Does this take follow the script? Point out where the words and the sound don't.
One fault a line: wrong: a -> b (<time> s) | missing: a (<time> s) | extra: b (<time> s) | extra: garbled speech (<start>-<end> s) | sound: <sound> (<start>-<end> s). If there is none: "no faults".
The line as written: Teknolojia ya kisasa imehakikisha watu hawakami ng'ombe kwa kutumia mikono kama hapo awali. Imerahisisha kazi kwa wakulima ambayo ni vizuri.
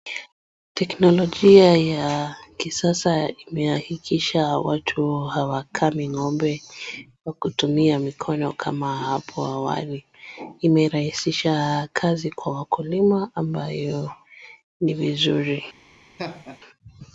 sound: laugh (16.2-16.6 s)